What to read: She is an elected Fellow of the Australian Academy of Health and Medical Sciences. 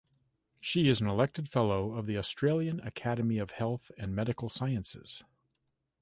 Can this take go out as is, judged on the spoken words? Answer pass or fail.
pass